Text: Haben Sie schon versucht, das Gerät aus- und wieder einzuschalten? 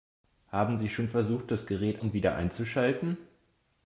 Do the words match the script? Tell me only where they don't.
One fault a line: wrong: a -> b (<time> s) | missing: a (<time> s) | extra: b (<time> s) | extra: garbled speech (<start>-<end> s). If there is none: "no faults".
missing: aus (2.0 s)